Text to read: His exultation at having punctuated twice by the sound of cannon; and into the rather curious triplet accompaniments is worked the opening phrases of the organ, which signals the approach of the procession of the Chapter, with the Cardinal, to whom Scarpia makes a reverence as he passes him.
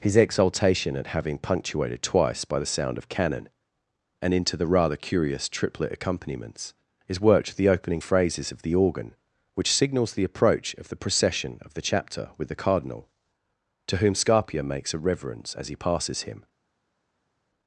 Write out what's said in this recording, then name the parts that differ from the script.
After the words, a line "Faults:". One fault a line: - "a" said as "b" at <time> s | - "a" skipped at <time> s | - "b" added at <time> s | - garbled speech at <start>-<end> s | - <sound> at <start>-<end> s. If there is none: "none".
His exultation at having punctuated twice by the sound of cannon; and into the rather curious triplet accompaniments is worked the opening phrases of the organ, which signals the approach of the procession of the Chapter, with the Cardinal, to whom Scarpia makes a reverence as he passes him.
Faults:
none